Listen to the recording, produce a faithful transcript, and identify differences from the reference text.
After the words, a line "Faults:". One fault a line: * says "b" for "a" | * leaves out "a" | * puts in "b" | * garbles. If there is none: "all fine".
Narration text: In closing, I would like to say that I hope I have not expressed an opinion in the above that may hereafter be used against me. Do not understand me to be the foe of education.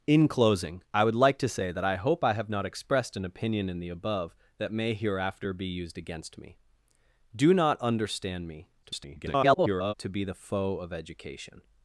In closing, I would like to say that I hope I have not expressed an opinion in the above that may hereafter be used against me. Do not understand me [garbled] to be the foe of education.
Faults:
* garbles